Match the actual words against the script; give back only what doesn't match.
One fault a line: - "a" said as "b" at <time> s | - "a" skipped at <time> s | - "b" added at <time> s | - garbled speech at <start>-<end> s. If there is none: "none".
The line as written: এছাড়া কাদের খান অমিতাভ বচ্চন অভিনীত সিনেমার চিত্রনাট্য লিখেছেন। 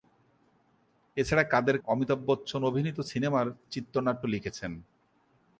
- "খান" skipped at 1.8 s